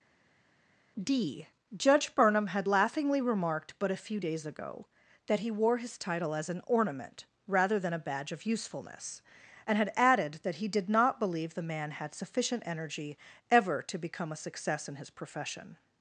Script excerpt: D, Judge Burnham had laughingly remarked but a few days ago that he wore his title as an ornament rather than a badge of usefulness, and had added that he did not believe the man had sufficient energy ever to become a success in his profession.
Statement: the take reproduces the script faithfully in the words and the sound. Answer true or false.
true